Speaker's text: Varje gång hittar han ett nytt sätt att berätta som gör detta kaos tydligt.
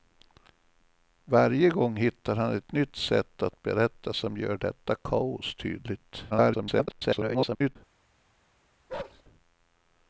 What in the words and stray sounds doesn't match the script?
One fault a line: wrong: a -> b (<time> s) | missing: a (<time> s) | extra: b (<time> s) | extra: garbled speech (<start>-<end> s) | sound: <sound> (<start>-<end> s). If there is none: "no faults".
extra: garbled speech (6.3-7.8 s)
sound: bark (8.9-9.2 s)